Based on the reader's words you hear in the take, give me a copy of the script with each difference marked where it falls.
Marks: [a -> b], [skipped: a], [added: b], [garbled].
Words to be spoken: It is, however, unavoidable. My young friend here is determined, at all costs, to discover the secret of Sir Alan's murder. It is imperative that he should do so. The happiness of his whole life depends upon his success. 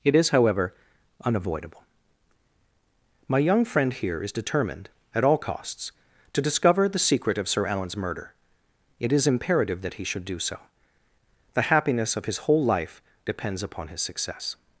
It is, however, unavoidable. My young friend here is determined, at all costs, to discover the secret of Sir Alan's murder. It is imperative that he should do so. The happiness of his whole life depends upon his success.